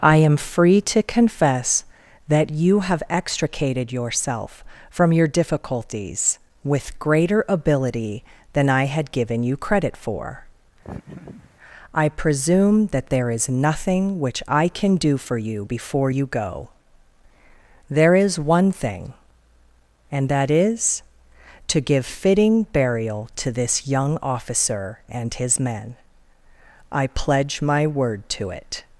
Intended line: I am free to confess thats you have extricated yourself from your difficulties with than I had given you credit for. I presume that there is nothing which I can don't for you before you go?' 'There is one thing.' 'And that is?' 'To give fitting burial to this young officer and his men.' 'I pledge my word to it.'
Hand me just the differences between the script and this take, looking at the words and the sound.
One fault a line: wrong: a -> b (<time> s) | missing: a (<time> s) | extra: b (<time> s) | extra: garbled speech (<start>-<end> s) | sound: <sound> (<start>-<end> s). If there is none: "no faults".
wrong: thats -> that (2.3 s)
extra: greater ability (7.0 s)
sound: laugh (10.8-11.5 s)
wrong: don't -> do (15.0 s)